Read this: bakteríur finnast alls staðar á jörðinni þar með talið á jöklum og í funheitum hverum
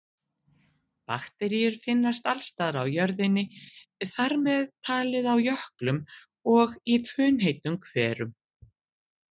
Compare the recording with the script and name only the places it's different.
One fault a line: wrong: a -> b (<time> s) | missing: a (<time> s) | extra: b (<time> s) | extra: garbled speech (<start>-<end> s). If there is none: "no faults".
no faults